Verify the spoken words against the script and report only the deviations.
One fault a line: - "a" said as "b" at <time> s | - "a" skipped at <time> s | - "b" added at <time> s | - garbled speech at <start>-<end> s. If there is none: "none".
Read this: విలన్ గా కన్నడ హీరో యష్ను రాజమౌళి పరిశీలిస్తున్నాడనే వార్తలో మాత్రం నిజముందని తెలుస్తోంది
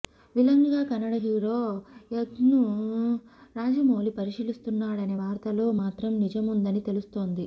none